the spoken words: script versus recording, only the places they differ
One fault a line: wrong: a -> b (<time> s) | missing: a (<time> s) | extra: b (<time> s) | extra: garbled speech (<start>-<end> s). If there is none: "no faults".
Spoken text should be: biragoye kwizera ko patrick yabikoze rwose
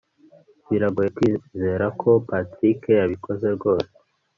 no faults